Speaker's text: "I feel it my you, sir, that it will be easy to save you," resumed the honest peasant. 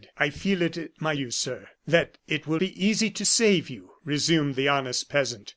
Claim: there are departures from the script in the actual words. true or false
false